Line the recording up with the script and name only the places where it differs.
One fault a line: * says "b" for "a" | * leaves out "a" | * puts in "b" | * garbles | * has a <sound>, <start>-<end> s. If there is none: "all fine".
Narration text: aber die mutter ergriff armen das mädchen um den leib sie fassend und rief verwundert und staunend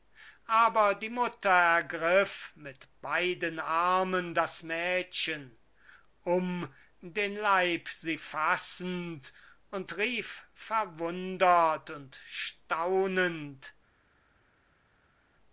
* puts in "mit beiden"